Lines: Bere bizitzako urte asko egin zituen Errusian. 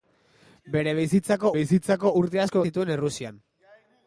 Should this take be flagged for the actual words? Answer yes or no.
yes